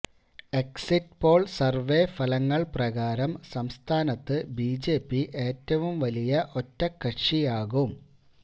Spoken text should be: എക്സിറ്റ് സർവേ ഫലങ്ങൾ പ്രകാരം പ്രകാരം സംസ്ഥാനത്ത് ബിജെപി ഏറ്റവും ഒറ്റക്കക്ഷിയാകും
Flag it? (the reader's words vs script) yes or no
yes